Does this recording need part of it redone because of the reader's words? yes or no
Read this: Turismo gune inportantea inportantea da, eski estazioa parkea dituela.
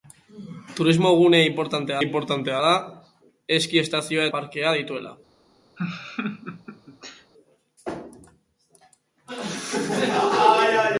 no